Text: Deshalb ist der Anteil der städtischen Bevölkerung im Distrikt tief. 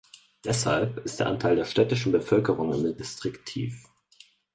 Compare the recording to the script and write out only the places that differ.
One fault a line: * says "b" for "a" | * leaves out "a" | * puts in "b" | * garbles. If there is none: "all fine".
all fine